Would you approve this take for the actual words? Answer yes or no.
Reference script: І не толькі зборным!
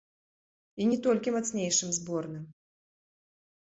no